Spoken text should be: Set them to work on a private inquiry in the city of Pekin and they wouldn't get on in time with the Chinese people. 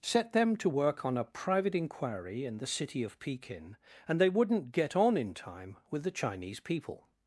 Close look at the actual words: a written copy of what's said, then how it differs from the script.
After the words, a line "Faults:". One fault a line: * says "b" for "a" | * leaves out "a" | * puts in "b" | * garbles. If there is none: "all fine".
Set them to work on a private inquiry in the city of Pekin and they wouldn't get on in time with the Chinese people.
Faults:
all fine